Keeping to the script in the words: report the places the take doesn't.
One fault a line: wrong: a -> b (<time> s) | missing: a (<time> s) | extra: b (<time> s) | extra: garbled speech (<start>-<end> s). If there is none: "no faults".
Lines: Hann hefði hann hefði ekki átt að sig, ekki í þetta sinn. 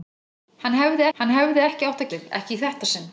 no faults